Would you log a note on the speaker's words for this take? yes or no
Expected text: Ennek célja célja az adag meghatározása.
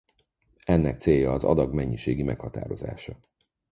yes